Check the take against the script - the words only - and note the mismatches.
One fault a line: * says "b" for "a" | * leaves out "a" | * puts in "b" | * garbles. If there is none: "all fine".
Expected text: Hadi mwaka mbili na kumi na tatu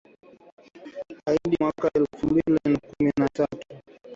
* puts in "elfu"